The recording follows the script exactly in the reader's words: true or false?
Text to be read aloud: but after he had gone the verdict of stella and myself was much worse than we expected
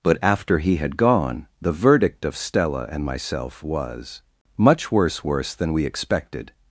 false